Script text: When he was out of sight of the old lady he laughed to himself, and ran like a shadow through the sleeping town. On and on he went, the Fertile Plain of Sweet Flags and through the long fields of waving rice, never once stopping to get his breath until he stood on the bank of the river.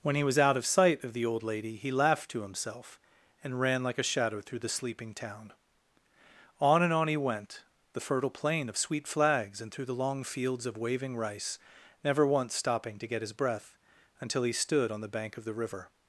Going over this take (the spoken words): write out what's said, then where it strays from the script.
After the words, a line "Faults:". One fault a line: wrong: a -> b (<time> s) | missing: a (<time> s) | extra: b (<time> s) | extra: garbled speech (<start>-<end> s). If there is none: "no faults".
When he was out of sight of the old lady he laughed to himself, and ran like a shadow through the sleeping town. On and on he went, the Fertile Plain of Sweet Flags and through the long fields of waving rice, never once stopping to get his breath until he stood on the bank of the river.
Faults:
no faults